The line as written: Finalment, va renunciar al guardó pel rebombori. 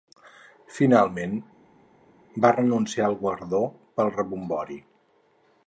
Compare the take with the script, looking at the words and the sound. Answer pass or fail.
pass